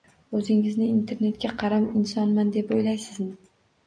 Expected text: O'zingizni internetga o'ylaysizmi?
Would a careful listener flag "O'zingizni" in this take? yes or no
no